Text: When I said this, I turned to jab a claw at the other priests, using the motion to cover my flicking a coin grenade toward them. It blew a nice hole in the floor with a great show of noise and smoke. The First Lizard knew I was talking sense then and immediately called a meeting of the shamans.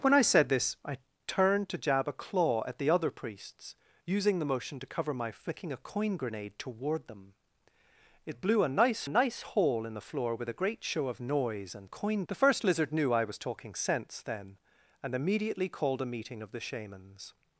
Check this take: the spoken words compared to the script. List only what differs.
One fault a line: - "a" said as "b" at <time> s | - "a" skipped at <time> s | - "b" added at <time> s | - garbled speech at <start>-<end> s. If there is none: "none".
- "nice" added at 9.1 s
- "smoke" said as "coin" at 11.8 s